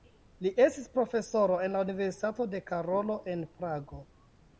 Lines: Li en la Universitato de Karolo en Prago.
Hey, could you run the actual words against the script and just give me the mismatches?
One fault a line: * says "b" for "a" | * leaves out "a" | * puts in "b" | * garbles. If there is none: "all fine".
* puts in "estis profesoro"